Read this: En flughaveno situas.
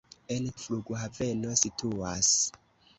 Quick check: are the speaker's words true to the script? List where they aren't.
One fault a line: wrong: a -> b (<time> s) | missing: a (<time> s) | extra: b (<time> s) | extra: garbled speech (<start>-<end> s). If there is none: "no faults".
no faults